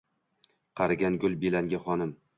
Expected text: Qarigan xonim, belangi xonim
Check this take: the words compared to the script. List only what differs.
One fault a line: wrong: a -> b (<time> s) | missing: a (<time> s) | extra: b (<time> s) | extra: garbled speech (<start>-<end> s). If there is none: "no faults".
wrong: xonim -> gul (1.2 s)